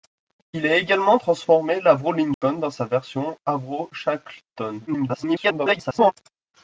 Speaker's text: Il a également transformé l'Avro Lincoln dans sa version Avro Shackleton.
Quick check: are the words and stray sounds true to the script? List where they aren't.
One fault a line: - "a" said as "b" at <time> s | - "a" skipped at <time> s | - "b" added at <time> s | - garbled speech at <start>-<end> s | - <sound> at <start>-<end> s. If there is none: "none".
- dropout at 2.3-2.4 s
- garbled speech at 4.9-6.1 s